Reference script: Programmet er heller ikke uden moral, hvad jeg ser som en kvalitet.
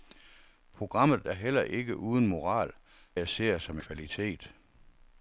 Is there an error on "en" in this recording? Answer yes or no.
yes